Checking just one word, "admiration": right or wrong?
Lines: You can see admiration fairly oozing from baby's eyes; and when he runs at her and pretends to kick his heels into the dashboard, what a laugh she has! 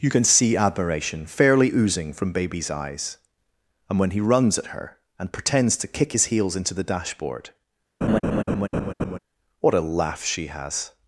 right